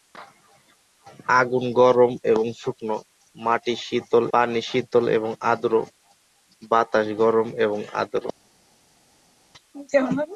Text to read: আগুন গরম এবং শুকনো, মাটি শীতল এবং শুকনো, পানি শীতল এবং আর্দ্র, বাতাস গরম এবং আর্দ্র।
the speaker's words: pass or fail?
fail